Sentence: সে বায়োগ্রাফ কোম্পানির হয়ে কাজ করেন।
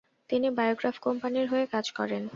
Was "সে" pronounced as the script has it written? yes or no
no